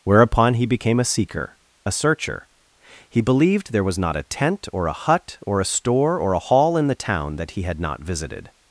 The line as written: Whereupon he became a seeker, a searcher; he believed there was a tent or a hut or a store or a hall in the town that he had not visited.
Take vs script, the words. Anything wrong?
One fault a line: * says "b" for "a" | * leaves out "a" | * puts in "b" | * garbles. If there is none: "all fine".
* puts in "not"